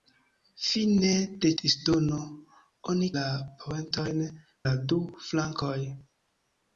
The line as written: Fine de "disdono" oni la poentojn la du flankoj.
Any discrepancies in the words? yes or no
no